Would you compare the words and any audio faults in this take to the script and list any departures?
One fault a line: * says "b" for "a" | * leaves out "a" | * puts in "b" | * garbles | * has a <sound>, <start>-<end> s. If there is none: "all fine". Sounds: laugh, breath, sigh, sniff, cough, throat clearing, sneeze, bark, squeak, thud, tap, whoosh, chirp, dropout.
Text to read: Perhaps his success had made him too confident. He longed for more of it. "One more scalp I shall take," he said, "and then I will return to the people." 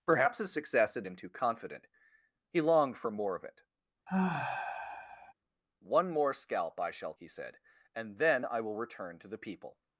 * leaves out "made"
* has a sigh, 4.1-5.3 s
* leaves out "take"